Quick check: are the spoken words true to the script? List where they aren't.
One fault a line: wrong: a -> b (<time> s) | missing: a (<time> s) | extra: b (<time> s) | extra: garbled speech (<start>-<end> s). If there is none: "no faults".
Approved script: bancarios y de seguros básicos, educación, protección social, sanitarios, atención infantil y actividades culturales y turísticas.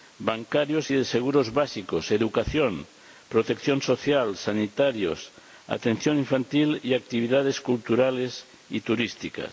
no faults